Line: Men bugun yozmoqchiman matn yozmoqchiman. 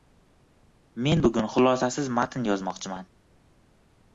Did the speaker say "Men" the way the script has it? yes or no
yes